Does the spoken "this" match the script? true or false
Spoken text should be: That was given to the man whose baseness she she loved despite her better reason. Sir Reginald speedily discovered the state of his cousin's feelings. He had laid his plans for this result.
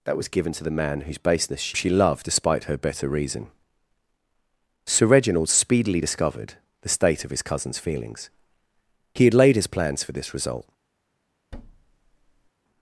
true